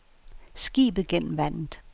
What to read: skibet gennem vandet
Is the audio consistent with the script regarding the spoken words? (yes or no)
yes